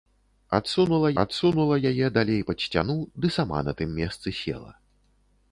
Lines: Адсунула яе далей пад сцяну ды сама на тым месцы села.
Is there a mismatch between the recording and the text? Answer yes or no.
yes